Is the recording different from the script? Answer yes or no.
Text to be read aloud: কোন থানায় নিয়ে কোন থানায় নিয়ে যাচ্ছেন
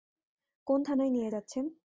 yes